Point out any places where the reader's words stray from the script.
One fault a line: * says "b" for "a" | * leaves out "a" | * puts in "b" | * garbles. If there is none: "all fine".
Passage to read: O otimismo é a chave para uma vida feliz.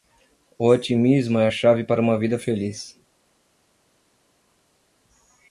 all fine